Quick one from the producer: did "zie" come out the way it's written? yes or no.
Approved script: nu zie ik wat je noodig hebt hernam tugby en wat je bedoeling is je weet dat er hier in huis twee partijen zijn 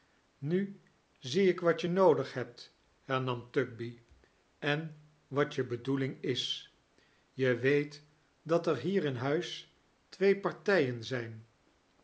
yes